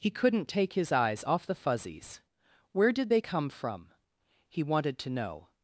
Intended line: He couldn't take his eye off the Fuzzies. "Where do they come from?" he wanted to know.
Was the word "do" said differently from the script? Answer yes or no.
yes